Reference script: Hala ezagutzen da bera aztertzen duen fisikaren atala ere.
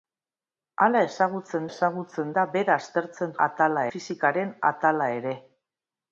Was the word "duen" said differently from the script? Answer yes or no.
yes